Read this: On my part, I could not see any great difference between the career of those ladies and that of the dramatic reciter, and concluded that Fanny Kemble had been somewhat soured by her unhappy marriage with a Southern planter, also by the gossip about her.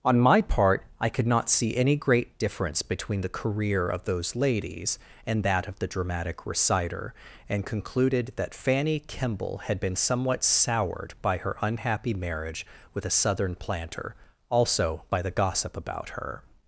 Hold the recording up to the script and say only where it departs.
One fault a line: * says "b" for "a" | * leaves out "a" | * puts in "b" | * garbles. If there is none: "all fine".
all fine